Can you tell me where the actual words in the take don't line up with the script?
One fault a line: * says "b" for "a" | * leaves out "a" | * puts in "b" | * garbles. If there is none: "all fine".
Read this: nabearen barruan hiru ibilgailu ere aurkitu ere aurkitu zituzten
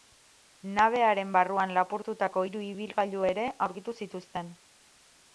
* puts in "lapurtutako"
* leaves out "ere aurkitu"